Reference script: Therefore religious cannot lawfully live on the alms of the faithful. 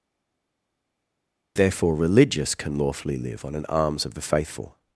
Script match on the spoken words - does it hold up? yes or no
no